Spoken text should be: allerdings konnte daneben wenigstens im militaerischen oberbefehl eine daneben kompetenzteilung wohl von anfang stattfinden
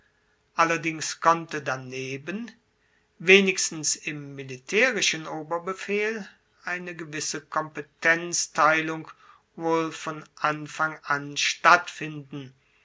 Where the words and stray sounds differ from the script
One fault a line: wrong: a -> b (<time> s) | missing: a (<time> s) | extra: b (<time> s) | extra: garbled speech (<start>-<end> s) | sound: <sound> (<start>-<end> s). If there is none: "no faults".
wrong: daneben -> gewisse (7.0 s)
extra: an (11.0 s)